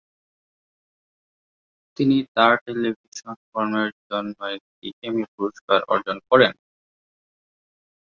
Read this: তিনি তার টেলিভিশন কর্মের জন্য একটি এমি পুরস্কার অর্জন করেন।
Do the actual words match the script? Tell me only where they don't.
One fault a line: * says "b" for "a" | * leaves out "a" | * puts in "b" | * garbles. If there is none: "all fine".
all fine